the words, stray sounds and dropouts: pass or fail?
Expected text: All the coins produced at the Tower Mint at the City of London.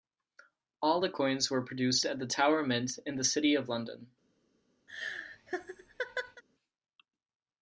fail